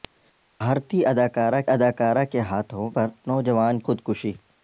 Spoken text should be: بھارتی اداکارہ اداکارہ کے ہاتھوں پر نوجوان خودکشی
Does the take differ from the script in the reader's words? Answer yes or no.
no